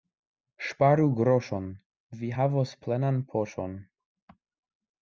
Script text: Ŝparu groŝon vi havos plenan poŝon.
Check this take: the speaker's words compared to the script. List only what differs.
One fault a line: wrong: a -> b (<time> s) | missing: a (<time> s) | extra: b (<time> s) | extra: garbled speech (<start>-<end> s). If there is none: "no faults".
no faults